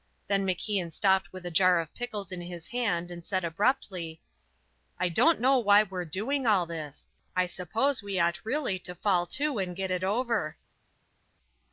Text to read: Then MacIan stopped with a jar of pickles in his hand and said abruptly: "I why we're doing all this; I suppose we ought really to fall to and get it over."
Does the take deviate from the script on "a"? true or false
false